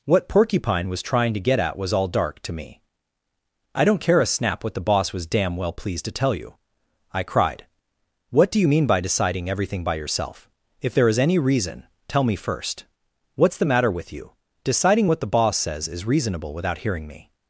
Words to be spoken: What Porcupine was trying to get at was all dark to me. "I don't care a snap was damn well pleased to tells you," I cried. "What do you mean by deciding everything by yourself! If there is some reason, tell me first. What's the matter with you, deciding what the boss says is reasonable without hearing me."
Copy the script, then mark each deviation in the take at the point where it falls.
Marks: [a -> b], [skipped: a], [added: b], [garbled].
What Porcupine was trying to get at was all dark to me. "I don't care a snap [added: what the boss] was damn well pleased to [tells -> tell] you," I cried. "What do you mean by deciding everything by yourself! If there is [some -> any] reason, tell me first. What's the matter with you, deciding what the boss says is reasonable without hearing me."